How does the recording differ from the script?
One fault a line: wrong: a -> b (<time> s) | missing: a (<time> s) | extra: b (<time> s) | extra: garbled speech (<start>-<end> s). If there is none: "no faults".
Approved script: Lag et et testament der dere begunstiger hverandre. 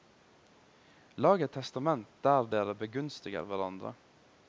missing: et (1.5 s)